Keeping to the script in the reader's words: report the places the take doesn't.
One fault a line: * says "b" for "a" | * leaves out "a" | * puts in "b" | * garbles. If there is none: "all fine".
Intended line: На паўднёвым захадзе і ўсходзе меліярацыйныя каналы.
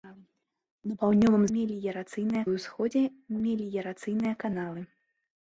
* says "меліярацыйныя" for "захадзе"